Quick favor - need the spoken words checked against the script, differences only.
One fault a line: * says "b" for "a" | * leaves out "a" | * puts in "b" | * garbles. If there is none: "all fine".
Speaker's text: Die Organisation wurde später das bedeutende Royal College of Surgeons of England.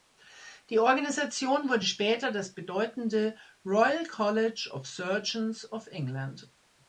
all fine